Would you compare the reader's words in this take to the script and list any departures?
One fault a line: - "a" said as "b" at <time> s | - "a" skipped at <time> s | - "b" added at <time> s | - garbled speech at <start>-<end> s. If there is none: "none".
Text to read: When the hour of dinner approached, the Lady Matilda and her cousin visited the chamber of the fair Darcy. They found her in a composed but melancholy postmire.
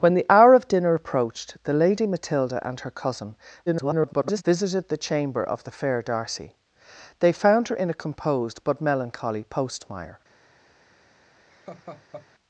- garbled speech at 3.7-4.4 s